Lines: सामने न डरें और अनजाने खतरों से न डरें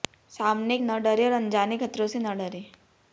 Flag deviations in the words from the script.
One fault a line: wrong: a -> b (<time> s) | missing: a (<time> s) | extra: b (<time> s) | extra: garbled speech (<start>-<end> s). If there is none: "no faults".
no faults